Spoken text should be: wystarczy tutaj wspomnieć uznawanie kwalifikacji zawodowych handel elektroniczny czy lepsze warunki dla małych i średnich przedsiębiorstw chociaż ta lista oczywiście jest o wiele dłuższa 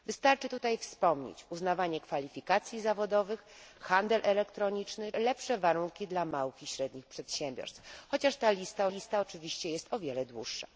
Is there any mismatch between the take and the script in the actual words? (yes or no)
yes